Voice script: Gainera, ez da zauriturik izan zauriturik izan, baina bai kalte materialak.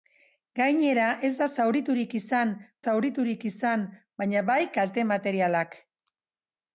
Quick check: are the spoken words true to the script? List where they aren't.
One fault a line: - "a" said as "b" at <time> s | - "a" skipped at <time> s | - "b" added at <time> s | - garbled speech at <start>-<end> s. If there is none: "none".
none